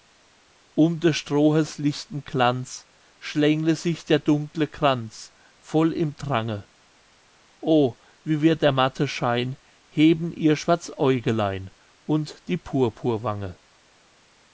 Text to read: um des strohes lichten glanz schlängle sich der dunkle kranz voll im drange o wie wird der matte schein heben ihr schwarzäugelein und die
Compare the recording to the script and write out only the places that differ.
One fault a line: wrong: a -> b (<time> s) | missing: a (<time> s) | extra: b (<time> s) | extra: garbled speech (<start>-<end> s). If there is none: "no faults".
no faults